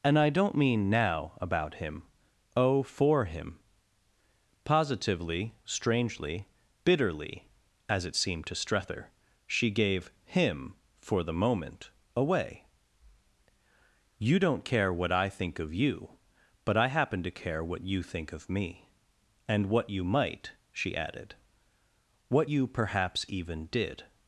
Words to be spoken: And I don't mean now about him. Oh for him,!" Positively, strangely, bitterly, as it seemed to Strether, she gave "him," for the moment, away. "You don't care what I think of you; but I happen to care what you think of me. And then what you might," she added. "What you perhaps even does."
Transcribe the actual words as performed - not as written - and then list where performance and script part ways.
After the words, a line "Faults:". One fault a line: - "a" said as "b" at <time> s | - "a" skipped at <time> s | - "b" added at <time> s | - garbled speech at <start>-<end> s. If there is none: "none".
And I don't mean now about him. Oh for him,!" Positively, strangely, bitterly, as it seemed to Strether, she gave "him," for the moment, away. "You don't care what I think of you; but I happen to care what you think of me. And what you might," she added. "What you perhaps even did."
Faults:
- "then" skipped at 19.7 s
- "does" said as "did" at 23.7 s